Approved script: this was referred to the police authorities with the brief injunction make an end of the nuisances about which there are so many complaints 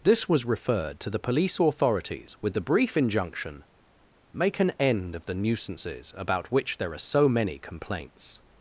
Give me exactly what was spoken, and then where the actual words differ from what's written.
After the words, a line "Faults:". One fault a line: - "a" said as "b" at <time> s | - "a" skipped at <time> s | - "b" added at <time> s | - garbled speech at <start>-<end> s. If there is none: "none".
this was referred to the police authorities with the brief injunction make an end of the nuisances about which there are so many complaints
Faults:
none